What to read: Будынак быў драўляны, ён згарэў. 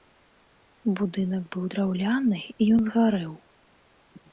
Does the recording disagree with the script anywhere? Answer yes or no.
no